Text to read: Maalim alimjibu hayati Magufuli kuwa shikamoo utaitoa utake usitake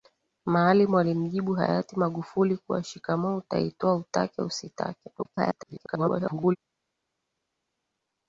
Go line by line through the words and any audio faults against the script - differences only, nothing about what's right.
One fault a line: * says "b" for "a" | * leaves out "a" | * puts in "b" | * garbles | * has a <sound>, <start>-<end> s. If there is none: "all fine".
* garbles